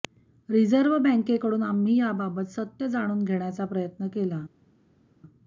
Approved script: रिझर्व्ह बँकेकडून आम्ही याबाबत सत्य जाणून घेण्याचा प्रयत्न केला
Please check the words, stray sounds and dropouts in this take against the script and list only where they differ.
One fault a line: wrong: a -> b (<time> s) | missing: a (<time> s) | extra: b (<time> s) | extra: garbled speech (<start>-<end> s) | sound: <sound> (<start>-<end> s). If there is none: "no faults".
no faults